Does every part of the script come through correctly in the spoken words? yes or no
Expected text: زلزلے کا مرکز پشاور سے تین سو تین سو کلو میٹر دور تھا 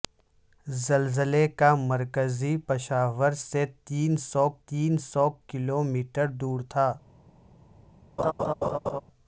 yes